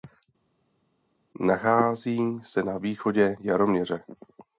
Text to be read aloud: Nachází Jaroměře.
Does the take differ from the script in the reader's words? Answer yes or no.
yes